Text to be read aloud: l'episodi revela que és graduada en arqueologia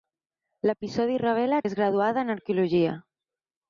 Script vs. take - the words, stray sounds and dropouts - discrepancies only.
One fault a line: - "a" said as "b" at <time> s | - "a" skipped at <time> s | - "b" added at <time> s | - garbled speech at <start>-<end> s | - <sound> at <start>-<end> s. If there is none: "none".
- "que" skipped at 1.6 s